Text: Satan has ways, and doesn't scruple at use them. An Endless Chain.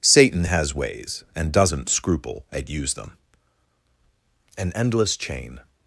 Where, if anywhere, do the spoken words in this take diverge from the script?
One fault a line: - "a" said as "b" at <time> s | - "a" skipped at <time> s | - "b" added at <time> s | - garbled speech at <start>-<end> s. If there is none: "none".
none